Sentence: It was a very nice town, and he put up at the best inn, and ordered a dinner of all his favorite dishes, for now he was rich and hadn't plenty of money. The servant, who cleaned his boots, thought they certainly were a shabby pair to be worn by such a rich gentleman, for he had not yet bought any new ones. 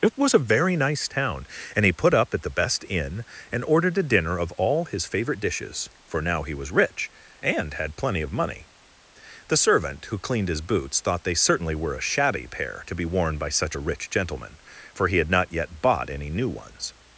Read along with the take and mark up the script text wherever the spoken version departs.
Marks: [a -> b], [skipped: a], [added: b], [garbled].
It was a very nice town, and he put up at the best inn, and ordered a dinner of all his favorite dishes, for now he was rich and [hadn't -> had] plenty of money. The servant, who cleaned his boots, thought they certainly were a shabby pair to be worn by such a rich gentleman, for he had not yet bought any new ones.